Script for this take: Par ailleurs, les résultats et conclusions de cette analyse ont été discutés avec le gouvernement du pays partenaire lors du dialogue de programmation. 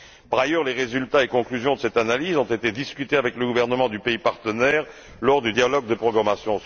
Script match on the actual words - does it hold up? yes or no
yes